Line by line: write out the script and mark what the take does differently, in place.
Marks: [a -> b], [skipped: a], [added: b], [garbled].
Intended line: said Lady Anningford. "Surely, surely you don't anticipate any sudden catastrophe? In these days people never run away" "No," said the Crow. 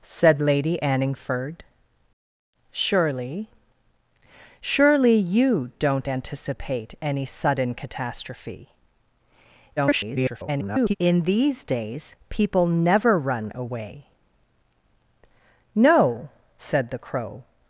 said Lady Anningford. "Surely, surely you don't anticipate any sudden catastrophe? [garbled] In these days people never run away" "No," said the Crow.